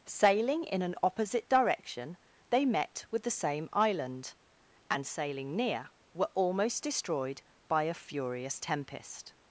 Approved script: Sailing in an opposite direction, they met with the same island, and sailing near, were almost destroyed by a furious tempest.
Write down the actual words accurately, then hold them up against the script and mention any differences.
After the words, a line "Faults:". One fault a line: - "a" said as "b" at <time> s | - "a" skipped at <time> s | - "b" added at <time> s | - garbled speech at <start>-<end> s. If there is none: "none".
Sailing in an opposite direction, they met with the same island, and sailing near, were almost destroyed by a furious tempest.
Faults:
none